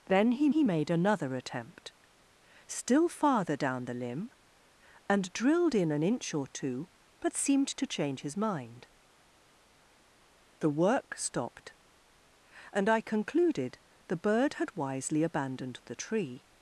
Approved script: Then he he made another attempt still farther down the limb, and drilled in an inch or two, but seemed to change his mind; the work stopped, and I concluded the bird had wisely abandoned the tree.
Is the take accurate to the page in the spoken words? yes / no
yes